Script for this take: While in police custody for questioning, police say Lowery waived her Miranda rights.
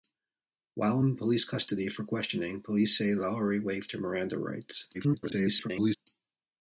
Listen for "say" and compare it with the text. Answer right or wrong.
right